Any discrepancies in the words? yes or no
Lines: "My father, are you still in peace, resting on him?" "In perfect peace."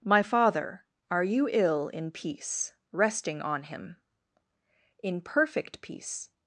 yes